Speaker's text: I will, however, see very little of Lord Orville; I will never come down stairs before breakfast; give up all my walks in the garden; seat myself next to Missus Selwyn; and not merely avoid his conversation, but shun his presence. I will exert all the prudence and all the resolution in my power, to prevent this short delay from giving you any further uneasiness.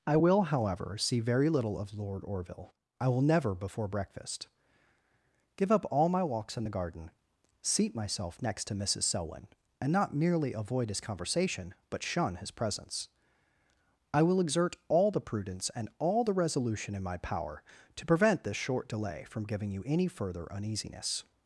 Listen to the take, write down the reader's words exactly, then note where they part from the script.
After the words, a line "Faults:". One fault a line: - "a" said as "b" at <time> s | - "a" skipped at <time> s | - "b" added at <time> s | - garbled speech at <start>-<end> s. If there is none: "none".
I will, however, see very little of Lord Orville; I will never before breakfast; give up all my walks in the garden; seat myself next to Missus Selwyn; and not merely avoid his conversation, but shun his presence. I will exert all the prudence and all the resolution in my power, to prevent this short delay from giving you any further uneasiness.
Faults:
- "come down stairs" skipped at 3.5 s